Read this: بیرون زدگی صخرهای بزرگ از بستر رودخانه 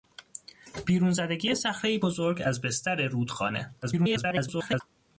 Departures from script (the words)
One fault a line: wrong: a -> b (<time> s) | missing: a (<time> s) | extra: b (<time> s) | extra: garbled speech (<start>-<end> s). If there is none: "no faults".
extra: garbled speech (3.8-4.8 s)